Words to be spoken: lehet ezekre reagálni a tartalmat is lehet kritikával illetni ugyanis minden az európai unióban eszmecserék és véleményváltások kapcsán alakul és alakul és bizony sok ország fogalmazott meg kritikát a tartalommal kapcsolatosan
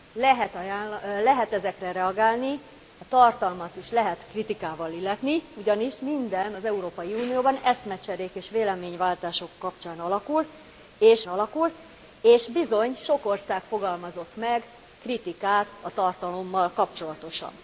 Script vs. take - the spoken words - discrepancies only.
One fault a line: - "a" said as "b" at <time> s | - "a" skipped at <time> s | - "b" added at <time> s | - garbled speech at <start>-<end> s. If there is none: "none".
none